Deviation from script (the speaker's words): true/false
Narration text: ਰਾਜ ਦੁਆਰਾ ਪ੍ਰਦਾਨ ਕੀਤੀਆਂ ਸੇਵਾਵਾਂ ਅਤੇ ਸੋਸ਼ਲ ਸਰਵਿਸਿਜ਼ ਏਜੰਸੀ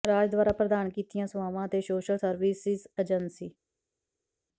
false